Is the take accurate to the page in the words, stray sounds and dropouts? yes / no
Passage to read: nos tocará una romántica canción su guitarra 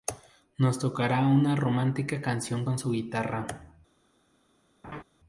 no